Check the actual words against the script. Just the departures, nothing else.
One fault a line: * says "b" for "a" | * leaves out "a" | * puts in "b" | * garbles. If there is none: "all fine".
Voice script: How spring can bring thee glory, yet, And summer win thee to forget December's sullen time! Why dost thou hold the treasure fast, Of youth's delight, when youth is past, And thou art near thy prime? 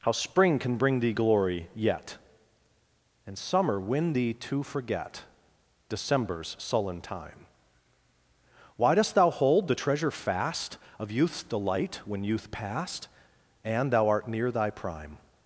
* leaves out "is"